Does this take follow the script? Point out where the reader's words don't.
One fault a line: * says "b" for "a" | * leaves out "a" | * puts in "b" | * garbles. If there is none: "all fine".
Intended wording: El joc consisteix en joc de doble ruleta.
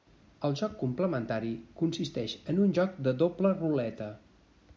* puts in "complementari"
* puts in "un"